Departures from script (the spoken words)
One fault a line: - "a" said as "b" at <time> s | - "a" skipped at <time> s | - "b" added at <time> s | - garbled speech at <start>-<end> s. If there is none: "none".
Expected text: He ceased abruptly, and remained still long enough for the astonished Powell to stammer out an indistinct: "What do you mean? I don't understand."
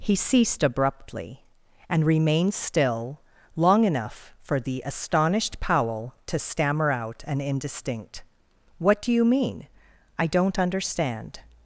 none